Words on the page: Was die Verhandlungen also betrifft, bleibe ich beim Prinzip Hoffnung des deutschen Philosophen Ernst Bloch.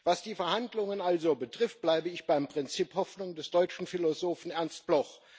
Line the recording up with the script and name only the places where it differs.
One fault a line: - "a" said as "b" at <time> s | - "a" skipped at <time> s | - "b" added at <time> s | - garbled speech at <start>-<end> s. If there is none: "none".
none